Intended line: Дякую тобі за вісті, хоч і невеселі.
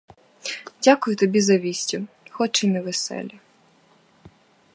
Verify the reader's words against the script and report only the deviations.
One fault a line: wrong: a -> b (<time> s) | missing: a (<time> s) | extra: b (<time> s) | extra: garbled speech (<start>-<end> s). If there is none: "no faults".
no faults